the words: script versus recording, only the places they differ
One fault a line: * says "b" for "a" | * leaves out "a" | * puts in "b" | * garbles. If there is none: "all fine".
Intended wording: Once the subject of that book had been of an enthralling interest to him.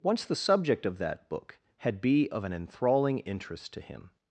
* says "be" for "been"